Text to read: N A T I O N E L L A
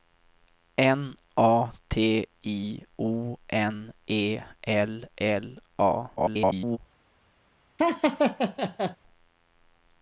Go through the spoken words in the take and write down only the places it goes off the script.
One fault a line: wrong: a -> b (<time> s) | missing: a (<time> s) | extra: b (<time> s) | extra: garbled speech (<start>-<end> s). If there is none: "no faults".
extra: garbled speech (6.2-6.8 s)